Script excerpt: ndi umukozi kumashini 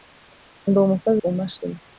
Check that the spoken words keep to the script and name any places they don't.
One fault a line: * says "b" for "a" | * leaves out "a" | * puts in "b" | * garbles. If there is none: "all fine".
all fine